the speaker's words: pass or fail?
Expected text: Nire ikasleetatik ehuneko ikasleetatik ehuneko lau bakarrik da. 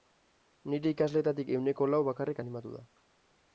fail